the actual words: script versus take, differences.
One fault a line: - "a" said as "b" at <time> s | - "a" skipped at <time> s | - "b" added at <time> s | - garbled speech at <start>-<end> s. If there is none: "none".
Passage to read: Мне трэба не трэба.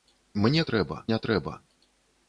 none